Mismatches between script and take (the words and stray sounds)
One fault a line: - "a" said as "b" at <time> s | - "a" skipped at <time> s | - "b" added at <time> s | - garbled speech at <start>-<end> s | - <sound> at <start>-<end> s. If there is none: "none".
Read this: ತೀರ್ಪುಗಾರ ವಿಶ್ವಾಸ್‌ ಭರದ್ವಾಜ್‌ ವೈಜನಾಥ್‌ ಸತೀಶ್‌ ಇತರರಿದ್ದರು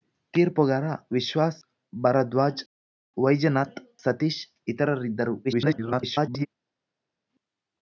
- garbled speech at 5.4-6.5 s